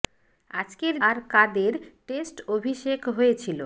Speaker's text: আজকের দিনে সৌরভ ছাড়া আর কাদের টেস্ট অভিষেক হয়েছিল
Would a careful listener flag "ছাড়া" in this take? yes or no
yes